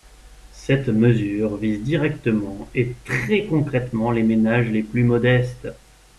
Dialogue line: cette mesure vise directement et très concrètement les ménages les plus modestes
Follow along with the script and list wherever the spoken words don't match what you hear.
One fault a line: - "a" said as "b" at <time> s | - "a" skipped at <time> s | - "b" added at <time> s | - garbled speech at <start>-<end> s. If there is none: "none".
none